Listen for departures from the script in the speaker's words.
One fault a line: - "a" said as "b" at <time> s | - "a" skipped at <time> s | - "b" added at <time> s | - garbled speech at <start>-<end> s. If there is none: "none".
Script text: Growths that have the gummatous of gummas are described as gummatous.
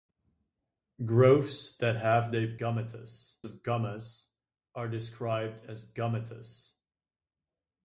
none